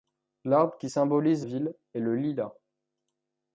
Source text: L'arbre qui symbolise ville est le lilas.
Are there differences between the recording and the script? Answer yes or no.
no